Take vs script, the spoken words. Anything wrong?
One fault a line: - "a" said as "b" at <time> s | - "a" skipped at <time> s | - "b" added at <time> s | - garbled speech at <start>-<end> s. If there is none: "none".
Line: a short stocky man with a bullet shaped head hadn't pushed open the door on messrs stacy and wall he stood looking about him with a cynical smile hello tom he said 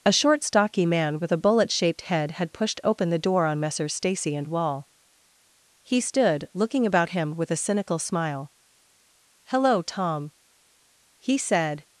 - "hadn't" said as "had" at 2.3 s